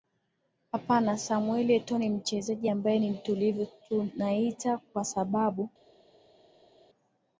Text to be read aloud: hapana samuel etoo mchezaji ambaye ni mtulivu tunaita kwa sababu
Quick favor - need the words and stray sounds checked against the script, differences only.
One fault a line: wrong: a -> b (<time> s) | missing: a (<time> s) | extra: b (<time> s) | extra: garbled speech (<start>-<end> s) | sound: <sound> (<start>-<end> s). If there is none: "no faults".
extra: ni (2.0 s)